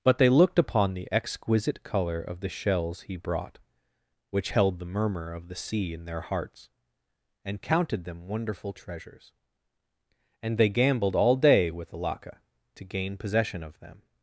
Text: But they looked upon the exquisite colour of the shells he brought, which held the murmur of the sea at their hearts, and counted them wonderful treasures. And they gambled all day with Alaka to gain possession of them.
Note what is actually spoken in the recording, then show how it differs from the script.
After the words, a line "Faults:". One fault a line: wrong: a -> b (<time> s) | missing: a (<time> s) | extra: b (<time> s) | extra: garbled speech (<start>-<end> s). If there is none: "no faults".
But they looked upon the exquisite colour of the shells he brought, which held the murmur of the sea in their hearts, and counted them wonderful treasures. And they gambled all day with Alaka to gain possession of them.
Faults:
wrong: at -> in (5.9 s)